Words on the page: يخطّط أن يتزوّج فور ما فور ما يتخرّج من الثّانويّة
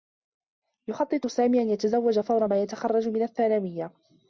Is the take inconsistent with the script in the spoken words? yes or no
yes